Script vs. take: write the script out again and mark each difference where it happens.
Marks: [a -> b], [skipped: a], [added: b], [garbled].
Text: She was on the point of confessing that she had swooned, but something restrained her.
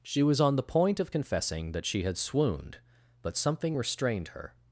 She was on the point of confessing that she had swooned, but something restrained her.